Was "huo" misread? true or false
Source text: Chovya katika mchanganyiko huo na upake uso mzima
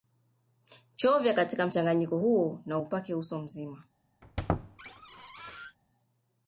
false